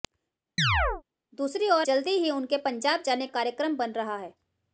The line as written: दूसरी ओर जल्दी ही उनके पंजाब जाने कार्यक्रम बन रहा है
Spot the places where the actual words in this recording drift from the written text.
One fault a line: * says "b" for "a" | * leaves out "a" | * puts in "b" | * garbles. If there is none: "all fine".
all fine